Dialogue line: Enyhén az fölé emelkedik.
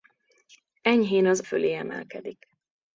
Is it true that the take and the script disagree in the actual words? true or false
false